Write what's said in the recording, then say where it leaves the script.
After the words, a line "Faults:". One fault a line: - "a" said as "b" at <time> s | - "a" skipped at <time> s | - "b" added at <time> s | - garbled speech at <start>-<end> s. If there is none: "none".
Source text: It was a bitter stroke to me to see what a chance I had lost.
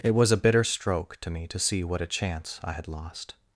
It was a bitter stroke to me to see what a chance I had lost.
Faults:
none